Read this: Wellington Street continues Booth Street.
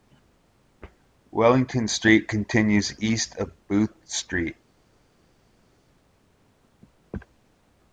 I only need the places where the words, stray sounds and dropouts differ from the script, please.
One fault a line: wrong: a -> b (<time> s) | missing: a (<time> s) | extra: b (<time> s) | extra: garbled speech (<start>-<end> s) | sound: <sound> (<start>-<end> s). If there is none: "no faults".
extra: east of (3.0 s)